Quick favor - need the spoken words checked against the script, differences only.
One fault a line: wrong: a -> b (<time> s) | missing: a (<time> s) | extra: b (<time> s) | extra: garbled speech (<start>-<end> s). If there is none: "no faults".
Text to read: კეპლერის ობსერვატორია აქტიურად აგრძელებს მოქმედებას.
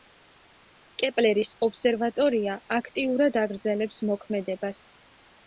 no faults